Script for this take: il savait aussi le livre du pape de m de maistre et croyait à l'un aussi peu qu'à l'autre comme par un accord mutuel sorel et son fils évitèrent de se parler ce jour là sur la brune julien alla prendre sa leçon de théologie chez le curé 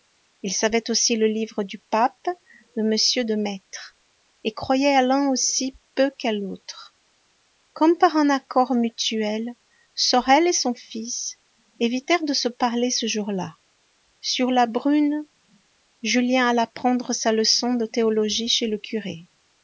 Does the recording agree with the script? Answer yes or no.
yes